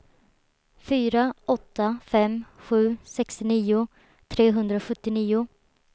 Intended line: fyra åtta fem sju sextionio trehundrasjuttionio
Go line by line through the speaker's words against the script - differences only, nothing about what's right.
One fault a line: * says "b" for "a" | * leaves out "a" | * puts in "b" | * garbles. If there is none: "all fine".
all fine